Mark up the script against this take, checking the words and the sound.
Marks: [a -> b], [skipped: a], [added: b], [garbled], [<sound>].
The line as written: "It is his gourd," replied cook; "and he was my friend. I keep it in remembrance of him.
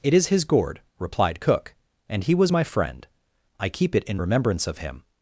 "It is his gourd," replied cook; "and he was my friend. I keep it in remembrance of him.